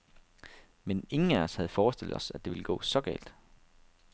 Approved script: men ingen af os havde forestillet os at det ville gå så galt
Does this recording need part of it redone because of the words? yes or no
no